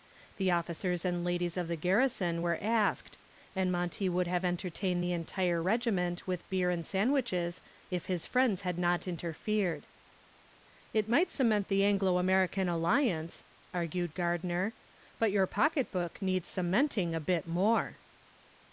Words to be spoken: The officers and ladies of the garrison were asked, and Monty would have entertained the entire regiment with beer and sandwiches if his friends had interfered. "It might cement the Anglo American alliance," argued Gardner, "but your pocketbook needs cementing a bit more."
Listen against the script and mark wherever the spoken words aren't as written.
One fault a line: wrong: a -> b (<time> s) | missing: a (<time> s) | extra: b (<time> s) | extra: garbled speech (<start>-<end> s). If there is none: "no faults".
extra: not (8.8 s)